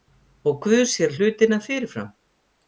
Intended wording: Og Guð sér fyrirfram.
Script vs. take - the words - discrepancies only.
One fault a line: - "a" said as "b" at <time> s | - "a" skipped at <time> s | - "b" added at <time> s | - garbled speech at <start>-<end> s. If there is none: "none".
- "hlutina" added at 1.1 s